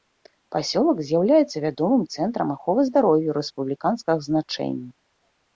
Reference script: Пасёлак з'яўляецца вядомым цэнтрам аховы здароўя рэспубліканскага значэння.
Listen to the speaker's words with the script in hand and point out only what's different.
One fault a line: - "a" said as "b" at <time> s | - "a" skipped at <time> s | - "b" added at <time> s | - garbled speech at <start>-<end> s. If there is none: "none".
none